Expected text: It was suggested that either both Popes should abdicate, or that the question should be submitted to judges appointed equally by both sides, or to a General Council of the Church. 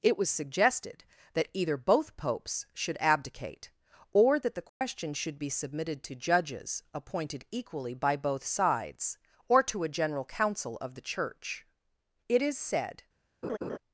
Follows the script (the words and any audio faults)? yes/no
no